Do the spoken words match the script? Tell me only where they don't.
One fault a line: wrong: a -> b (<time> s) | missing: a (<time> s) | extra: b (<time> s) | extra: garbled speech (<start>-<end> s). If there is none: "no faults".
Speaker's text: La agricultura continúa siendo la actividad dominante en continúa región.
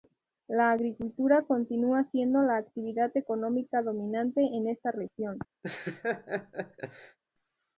extra: económica (3.1 s)
wrong: continúa -> esta (4.7 s)